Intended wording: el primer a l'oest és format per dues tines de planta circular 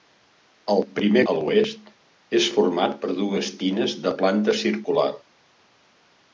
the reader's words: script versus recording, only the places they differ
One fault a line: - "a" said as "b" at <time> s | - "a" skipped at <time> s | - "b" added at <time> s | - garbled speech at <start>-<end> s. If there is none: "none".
none